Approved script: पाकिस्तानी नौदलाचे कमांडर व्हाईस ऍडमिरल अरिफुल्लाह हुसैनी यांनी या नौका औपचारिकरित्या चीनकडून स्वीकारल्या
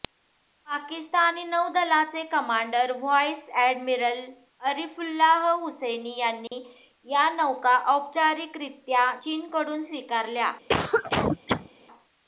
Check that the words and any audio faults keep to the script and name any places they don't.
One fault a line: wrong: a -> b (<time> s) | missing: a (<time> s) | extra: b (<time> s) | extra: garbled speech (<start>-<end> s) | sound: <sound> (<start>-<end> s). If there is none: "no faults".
sound: dropout (6.5-6.5 s)
sound: cough (10.7-11.7 s)